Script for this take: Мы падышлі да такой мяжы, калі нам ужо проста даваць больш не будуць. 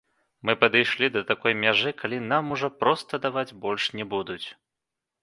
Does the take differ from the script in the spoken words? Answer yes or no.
no